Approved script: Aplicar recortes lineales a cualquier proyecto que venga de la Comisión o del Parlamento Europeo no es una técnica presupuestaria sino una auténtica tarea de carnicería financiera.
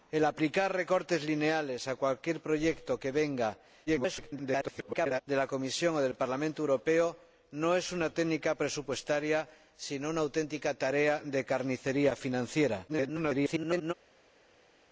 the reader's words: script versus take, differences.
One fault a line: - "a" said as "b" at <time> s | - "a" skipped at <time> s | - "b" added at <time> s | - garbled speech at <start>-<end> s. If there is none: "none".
- garbled speech at 3.9-5.2 s
- garbled speech at 12.9-13.9 s